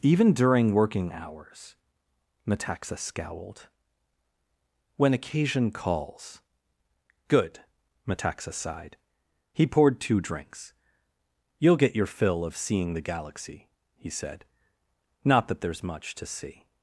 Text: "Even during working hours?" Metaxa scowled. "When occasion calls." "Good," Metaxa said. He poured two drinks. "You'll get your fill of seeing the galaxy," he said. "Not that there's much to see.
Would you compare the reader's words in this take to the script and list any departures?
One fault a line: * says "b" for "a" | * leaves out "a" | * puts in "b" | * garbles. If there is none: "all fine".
* says "sighed" for "said"